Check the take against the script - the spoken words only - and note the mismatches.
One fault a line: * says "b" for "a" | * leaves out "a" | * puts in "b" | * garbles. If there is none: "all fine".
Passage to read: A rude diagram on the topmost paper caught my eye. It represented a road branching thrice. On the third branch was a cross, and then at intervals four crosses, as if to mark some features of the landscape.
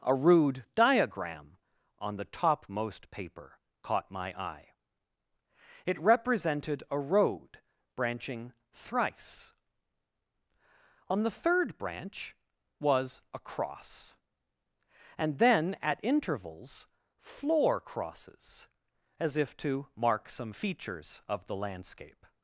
* says "floor" for "four"